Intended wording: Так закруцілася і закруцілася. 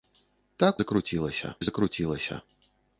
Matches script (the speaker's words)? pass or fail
pass